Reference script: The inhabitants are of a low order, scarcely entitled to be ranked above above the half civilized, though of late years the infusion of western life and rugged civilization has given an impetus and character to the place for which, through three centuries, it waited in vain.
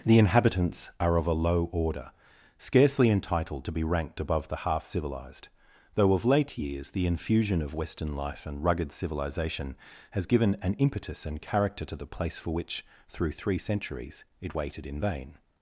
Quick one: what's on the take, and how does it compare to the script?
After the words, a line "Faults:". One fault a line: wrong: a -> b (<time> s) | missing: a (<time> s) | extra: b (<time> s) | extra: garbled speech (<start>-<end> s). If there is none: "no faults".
The inhabitants are of a low order, scarcely entitled to be ranked above the half civilized, though of late years the infusion of western life and rugged civilization has given an impetus and character to the place for which, through three centuries, it waited in vain.
Faults:
missing: above (4.5 s)